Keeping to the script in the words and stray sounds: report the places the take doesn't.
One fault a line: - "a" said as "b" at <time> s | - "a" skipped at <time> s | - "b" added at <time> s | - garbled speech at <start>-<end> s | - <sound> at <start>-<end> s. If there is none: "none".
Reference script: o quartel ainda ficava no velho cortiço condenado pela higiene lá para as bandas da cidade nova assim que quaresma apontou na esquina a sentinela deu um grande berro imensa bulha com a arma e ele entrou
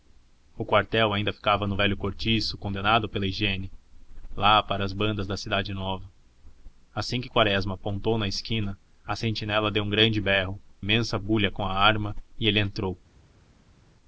none